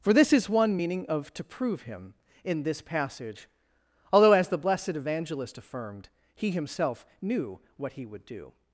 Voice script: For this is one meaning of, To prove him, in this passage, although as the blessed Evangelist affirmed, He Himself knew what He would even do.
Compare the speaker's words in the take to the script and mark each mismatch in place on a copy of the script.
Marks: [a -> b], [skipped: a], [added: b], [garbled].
For this is one meaning of, To prove him, in this passage, although as the blessed Evangelist affirmed, He Himself knew what He would [skipped: even] do.